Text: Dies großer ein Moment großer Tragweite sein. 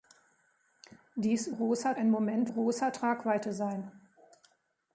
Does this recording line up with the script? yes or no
yes